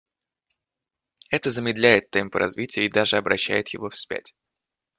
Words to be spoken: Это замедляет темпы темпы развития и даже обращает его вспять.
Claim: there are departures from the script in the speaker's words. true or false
true